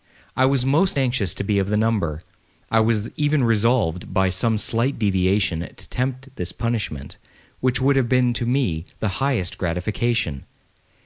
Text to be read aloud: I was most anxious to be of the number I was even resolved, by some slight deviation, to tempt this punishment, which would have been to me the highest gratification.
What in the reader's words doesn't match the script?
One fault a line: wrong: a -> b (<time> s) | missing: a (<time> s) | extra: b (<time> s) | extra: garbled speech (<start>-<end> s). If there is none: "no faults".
no faults